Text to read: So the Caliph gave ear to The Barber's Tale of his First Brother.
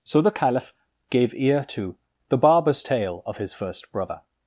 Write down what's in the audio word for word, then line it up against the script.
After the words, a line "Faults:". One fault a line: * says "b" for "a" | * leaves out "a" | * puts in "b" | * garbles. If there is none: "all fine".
So the Caliph gave ear to The Barber's Tale of his First Brother.
Faults:
all fine